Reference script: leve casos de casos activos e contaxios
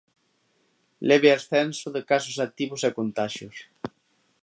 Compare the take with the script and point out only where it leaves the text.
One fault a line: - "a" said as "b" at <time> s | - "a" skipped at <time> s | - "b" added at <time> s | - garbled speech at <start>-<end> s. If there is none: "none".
- "casos" said as "ascenso" at 1.3 s